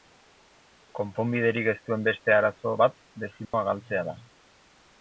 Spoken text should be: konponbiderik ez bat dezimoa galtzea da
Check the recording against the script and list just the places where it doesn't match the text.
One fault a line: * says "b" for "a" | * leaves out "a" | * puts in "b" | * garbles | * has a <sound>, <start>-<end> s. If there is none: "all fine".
* puts in "duen beste arazo"
* has a dropout, 3.4-3.5 s